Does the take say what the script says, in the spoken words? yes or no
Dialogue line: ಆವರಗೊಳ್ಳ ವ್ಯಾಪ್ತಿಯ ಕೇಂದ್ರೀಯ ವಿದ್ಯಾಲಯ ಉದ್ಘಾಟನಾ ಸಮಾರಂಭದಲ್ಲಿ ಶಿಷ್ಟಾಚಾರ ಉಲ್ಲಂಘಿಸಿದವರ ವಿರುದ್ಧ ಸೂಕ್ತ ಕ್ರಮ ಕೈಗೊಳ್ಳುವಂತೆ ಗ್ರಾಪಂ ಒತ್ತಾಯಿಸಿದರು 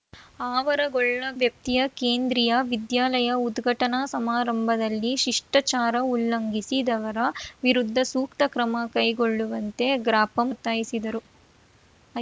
yes